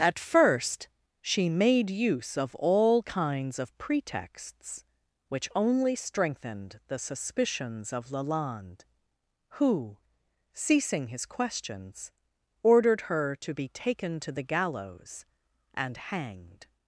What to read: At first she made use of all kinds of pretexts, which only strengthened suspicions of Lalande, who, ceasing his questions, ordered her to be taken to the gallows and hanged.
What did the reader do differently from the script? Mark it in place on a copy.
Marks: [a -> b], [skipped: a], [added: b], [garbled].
At first she made use of all kinds of pretexts, which only strengthened [added: the] suspicions of Lalande, who, ceasing his questions, ordered her to be taken to the gallows and hanged.